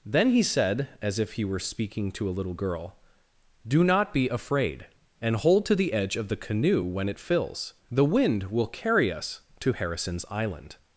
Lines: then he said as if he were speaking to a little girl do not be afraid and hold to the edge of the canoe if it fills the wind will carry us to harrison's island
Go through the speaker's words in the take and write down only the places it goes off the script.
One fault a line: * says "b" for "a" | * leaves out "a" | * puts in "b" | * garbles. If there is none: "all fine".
* says "when" for "if"